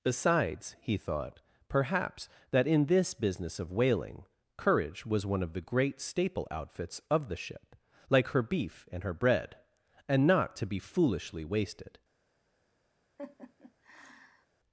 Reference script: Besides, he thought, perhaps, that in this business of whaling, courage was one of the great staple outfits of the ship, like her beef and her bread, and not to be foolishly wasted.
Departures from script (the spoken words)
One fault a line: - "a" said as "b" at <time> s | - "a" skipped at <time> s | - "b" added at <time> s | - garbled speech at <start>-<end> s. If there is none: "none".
none